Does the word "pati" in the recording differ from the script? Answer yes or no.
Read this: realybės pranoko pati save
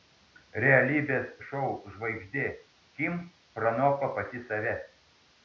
no